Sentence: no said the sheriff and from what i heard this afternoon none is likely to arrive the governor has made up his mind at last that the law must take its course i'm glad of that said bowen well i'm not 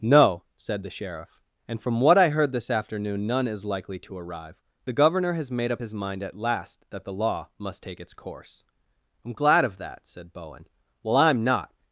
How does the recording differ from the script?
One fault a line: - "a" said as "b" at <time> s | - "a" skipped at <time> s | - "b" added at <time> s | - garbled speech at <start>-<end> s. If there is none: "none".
none